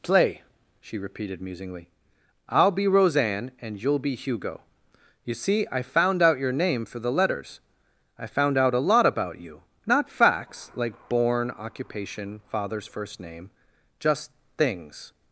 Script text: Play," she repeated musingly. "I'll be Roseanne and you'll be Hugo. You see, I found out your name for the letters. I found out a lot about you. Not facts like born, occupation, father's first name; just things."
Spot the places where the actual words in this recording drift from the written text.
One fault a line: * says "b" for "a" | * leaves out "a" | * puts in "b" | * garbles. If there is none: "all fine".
all fine